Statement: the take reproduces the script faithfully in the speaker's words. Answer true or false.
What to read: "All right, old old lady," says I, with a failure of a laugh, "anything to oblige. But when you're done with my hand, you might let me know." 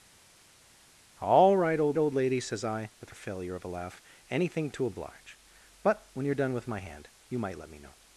true